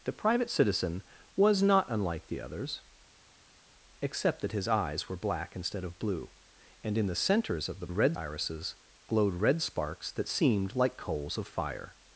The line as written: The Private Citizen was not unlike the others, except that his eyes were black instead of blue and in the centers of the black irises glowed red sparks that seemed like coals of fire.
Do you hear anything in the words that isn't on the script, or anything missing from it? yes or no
yes